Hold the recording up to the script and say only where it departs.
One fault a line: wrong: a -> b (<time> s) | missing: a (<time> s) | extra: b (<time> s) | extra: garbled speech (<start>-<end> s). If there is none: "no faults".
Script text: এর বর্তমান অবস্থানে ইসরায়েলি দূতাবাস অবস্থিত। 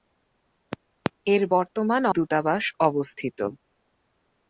missing: অবস্থানে ইসরায়েলি (2.0 s)